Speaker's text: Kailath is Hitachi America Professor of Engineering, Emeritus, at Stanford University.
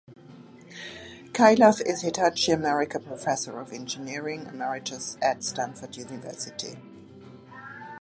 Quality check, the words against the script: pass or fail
pass